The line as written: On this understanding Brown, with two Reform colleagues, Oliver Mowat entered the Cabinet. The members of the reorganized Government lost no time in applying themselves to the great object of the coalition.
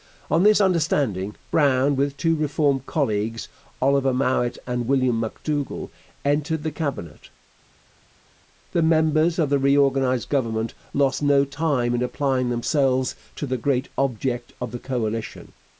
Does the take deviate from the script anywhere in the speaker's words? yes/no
yes